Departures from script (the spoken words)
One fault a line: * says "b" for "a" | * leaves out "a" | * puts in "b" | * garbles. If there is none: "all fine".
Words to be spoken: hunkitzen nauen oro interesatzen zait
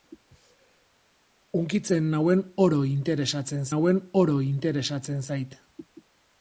* puts in "nauen oro interesatzen"